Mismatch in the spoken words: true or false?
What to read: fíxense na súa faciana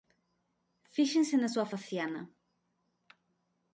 false